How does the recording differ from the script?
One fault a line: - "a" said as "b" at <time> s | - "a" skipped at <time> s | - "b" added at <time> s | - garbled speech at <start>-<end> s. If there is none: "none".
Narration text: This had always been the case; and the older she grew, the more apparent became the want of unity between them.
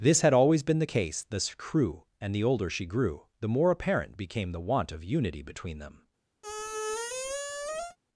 - "this crew" added at 1.3 s